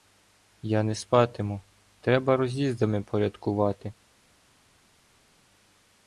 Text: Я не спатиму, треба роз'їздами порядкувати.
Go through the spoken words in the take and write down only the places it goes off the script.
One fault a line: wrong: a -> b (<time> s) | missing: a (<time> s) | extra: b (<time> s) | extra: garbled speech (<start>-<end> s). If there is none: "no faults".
no faults